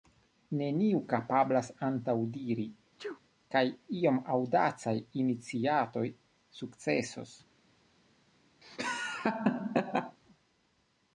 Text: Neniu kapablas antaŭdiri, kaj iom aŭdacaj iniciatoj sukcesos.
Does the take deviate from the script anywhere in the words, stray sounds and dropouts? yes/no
yes